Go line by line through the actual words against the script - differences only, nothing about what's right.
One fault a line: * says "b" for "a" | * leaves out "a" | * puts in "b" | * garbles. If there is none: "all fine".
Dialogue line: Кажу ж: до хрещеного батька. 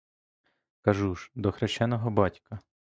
all fine